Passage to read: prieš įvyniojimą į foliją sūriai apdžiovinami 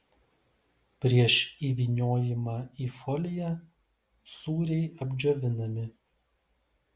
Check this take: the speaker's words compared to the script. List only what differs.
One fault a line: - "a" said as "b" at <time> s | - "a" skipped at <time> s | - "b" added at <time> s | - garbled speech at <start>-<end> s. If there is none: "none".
none